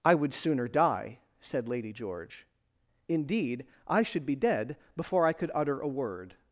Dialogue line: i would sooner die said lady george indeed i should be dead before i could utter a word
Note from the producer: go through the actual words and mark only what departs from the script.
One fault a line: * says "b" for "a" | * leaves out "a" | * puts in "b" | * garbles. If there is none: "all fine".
all fine